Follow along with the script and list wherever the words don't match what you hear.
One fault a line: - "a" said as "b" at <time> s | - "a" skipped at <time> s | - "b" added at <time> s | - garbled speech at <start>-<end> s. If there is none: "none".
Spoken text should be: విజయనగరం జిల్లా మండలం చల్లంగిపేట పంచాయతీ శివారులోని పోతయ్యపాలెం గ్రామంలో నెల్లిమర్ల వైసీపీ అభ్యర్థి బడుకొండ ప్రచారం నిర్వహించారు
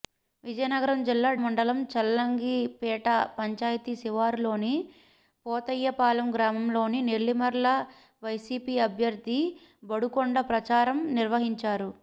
none